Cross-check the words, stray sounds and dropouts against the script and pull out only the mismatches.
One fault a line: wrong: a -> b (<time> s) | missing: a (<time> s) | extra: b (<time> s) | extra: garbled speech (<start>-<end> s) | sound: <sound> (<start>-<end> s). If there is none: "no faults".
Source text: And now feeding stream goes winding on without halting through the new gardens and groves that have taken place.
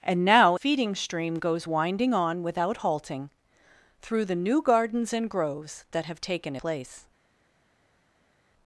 no faults